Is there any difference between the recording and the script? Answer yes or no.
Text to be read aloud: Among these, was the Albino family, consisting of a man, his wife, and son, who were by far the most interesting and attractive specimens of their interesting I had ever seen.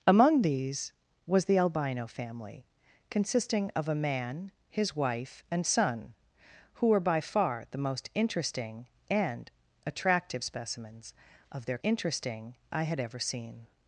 no